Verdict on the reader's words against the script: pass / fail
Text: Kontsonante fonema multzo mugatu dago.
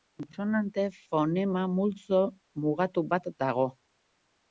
fail